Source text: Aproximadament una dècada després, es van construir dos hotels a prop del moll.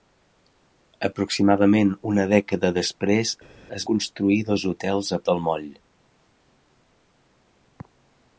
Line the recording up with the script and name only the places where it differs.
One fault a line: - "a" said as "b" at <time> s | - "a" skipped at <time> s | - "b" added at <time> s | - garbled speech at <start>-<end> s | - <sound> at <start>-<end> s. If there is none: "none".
- "van" skipped at 3.9 s
- "prop" skipped at 5.2 s